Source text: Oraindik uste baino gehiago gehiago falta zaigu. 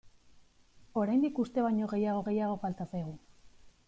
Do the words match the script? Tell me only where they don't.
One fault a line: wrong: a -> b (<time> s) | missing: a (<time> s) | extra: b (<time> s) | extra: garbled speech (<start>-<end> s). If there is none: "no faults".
no faults